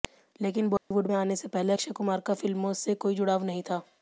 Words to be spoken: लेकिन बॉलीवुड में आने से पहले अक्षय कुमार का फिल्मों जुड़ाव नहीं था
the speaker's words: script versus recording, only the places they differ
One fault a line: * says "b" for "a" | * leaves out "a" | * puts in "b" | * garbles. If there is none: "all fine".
* puts in "से कोई"